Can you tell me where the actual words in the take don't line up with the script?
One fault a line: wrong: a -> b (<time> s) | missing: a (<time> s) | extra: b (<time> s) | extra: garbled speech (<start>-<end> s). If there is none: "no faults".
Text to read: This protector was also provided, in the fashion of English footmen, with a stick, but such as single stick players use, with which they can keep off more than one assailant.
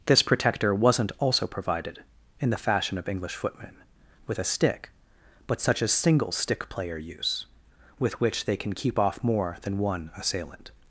wrong: was -> wasn't (0.7 s)
wrong: players -> player (6.7 s)